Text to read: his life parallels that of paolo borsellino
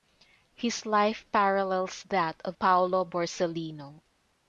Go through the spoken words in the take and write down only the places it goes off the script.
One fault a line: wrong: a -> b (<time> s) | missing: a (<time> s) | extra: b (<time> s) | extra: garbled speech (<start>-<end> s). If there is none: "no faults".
no faults